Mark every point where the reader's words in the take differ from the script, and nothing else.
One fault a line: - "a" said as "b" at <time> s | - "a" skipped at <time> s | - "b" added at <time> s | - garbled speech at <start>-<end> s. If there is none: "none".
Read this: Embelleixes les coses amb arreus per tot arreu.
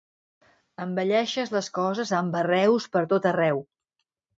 none